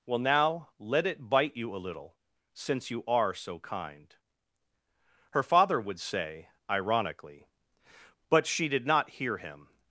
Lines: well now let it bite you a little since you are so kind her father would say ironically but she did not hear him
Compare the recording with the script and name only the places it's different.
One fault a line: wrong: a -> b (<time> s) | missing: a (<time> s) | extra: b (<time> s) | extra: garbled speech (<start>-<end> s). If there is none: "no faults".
no faults